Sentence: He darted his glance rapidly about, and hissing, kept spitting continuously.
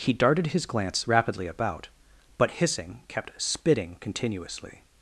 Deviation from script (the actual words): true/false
true